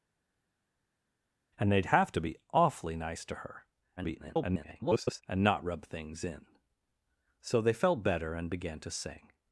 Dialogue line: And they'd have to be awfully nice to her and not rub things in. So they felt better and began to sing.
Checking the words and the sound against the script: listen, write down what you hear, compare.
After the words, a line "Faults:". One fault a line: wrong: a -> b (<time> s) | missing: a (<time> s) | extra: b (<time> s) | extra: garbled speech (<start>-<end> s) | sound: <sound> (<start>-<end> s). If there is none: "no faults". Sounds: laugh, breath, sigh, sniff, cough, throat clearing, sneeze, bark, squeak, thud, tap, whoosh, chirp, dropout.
And they'd have to be awfully nice to her [garbled] and not rub things in. So they felt better and began to sing.
Faults:
extra: garbled speech (4.0-5.2 s)